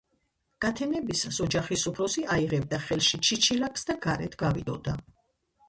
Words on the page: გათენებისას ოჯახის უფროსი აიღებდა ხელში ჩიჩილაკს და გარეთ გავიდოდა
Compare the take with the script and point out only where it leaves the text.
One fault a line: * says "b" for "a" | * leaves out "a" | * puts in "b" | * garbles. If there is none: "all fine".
all fine